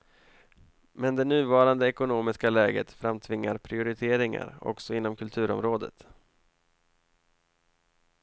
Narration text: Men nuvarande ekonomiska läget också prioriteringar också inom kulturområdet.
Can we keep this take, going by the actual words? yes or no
no